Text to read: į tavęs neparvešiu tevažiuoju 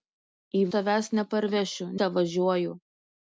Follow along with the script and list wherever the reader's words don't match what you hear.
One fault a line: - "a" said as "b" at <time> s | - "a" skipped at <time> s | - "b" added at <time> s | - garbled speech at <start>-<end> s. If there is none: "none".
none